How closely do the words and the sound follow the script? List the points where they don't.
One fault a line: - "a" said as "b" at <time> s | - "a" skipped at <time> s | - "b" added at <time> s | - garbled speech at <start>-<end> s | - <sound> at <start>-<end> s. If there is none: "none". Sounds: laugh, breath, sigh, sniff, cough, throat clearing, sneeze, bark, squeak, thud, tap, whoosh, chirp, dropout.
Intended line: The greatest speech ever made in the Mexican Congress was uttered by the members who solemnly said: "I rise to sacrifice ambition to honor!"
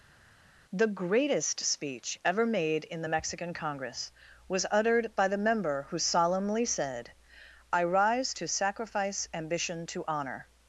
- "members" said as "member" at 5.4 s